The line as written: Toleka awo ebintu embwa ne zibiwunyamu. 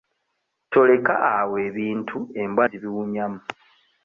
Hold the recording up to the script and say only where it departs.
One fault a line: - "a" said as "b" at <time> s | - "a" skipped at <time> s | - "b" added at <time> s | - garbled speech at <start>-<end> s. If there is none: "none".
- "ne" skipped at 2.6 s